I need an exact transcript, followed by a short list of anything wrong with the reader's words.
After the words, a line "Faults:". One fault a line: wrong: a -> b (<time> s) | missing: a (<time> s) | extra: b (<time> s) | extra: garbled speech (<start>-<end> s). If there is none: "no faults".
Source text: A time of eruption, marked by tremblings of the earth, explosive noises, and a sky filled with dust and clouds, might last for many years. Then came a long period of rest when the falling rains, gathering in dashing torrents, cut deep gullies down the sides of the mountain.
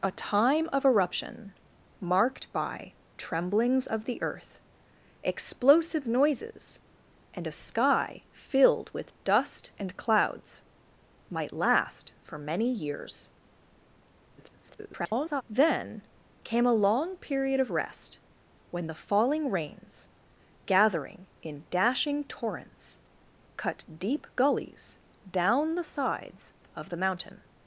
A time of eruption, marked by tremblings of the earth, explosive noises, and a sky filled with dust and clouds, might last for many years. [garbled] Then came a long period of rest when the falling rains, gathering in dashing torrents, cut deep gullies down the sides of the mountain.
Faults:
extra: garbled speech (14.4-15.4 s)